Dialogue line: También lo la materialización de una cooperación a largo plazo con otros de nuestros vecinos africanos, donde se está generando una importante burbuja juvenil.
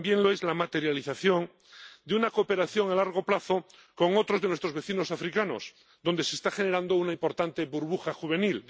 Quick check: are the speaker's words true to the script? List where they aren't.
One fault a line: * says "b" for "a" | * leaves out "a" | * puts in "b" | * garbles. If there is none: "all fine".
* puts in "es"